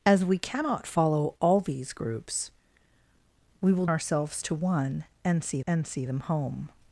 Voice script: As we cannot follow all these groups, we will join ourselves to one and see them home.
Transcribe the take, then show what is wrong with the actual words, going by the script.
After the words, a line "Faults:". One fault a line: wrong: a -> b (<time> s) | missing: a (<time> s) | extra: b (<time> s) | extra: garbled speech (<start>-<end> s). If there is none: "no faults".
As we cannot follow all these groups, we will ourselves to one and see and see them home.
Faults:
missing: join (3.9 s)
extra: and see (5.7 s)